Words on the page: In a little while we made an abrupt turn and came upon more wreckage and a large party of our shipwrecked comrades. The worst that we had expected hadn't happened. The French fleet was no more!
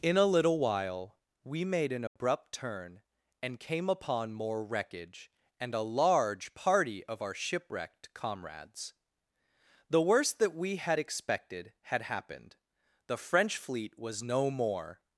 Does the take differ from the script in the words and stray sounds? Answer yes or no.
yes